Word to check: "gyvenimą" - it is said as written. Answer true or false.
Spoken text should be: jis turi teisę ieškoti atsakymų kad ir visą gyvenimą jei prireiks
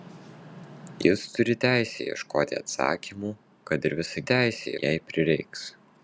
false